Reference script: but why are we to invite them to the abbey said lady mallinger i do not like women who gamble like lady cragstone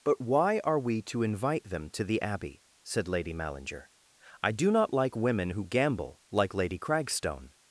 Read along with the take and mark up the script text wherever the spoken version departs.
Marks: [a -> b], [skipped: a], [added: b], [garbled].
but why are we to invite them to the abbey said lady mallinger i do not like women who gamble like lady cragstone